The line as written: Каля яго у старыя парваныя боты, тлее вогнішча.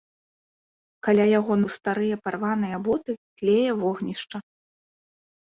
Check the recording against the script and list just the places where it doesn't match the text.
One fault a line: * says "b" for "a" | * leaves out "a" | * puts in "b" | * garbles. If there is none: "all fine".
all fine